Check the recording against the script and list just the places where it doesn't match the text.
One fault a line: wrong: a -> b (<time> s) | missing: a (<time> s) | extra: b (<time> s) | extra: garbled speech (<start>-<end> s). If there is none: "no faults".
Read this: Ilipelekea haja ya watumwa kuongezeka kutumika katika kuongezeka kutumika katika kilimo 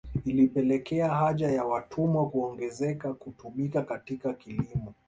missing: kuongezeka kutumika katika (4.3 s)